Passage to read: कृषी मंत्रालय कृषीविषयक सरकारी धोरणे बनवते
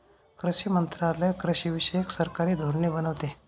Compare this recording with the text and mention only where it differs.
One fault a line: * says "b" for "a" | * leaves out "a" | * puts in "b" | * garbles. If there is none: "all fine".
all fine